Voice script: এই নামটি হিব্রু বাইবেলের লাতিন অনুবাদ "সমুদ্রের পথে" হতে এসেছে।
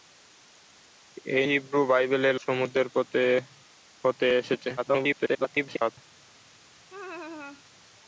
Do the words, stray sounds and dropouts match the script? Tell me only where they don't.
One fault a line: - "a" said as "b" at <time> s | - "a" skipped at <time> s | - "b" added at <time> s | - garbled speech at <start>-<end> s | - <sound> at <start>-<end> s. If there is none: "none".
- "নামটি" skipped at 1.4 s
- "লাতিন অনুবাদ" skipped at 2.4 s
- garbled speech at 4.8-6.0 s
- laugh at 6.9-7.6 s